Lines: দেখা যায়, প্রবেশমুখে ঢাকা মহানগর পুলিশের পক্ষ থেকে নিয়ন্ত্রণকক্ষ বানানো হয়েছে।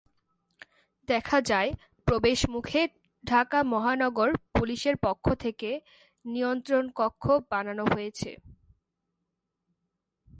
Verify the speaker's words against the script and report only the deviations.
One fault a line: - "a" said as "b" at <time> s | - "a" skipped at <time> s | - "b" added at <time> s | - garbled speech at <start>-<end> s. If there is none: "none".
none